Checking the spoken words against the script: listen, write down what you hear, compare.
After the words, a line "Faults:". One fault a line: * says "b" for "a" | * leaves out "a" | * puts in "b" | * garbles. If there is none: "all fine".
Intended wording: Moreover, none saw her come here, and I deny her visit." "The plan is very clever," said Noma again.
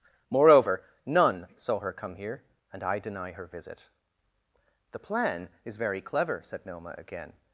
Moreover, none saw her come here, and I deny her visit." "The plan is very clever," said Noma again.
Faults:
all fine